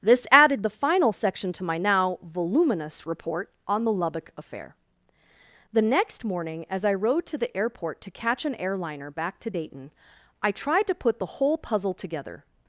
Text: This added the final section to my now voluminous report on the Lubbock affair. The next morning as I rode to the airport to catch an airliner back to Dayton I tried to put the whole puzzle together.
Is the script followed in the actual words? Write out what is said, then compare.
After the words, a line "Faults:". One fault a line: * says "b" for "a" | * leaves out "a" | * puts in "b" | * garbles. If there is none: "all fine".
This added the final section to my now voluminous report on the Lubbock affair. The next morning as I rode to the airport to catch an airliner back to Dayton I tried to put the whole puzzle together.
Faults:
all fine